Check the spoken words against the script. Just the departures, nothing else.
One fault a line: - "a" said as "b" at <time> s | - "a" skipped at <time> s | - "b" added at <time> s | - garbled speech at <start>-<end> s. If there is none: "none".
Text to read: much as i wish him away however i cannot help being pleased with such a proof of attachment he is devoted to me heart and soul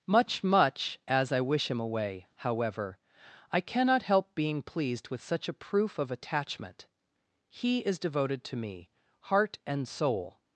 - "much" added at 0.4 s